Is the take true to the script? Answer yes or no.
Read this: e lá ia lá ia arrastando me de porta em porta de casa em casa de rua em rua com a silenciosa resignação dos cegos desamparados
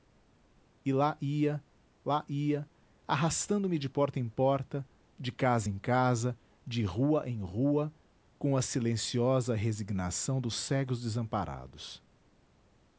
yes